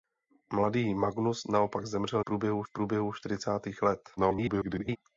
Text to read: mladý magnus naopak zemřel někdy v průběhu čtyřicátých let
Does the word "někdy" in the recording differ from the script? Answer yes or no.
yes